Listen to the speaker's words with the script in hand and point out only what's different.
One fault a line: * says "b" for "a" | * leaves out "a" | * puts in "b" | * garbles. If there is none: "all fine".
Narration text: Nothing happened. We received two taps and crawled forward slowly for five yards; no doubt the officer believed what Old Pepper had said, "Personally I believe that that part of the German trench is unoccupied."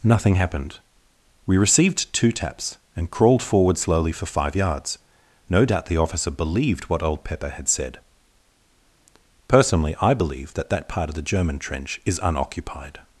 all fine